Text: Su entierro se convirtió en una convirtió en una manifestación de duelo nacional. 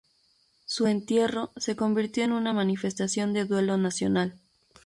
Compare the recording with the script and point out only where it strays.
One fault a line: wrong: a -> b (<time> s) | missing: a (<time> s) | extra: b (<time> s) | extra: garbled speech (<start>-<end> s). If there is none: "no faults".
missing: convirtió en una (2.5 s)